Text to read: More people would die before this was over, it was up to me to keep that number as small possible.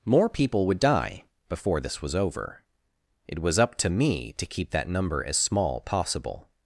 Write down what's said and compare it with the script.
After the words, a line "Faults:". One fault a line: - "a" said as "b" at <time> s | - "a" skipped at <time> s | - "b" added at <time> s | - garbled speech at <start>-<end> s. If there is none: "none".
More people would die before this was over, it was up to me to keep that number as small possible.
Faults:
none